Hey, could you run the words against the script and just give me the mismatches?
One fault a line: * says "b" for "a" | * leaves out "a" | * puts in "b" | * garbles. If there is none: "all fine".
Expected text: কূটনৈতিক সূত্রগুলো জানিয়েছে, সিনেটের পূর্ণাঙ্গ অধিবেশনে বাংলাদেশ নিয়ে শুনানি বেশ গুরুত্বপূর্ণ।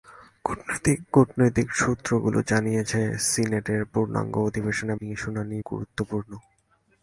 * leaves out "বাংলাদেশ"
* leaves out "বেশ"